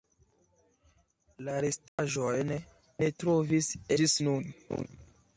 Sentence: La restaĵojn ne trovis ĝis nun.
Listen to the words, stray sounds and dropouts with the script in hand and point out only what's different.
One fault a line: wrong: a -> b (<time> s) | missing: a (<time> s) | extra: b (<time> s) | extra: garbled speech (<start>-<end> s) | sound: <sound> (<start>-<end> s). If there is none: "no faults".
sound: dropout (1.9-2.0 s)